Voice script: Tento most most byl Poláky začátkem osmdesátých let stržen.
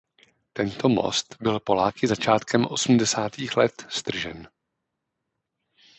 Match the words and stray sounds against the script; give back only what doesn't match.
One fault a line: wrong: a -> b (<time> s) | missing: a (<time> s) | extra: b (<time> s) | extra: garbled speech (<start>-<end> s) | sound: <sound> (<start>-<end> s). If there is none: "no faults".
missing: most (1.4 s)